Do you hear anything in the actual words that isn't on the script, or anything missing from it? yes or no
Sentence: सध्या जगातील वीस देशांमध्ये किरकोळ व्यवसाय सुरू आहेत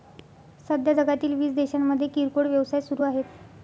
no